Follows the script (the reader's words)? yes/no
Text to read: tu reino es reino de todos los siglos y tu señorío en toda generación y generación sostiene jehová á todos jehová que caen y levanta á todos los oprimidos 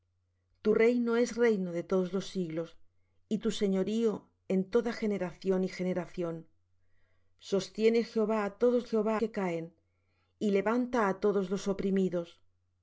yes